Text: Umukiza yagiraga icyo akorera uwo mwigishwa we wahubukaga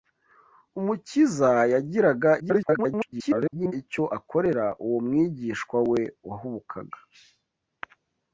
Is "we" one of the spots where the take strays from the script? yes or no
no